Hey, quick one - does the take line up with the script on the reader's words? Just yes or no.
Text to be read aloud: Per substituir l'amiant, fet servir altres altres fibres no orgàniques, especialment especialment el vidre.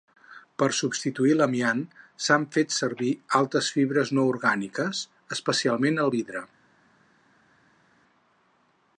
no